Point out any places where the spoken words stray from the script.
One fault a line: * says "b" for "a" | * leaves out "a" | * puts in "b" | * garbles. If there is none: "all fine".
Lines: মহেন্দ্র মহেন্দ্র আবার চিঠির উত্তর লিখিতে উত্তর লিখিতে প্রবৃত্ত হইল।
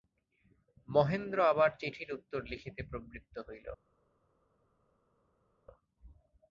* leaves out "মহেন্দ্র"
* leaves out "উত্তর লিখিতে"